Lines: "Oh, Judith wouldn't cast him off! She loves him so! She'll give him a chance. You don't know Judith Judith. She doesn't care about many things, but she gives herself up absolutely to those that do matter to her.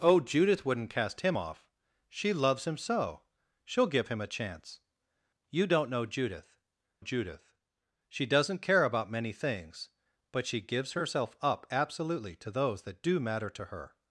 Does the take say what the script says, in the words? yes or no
yes